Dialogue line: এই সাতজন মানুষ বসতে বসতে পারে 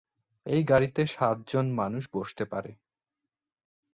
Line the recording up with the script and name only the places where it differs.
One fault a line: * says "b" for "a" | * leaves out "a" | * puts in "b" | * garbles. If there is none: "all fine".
* puts in "গাড়িতে"
* leaves out "বসতে"